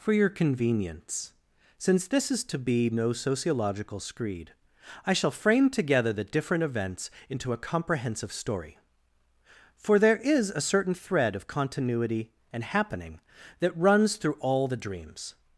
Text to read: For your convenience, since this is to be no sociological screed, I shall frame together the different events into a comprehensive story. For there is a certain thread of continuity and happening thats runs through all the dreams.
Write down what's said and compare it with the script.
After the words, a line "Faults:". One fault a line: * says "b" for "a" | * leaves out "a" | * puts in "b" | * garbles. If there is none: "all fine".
For your convenience, since this is to be no sociological screed, I shall frame together the different events into a comprehensive story. For there is a certain thread of continuity and happening that runs through all the dreams.
Faults:
* says "that" for "thats"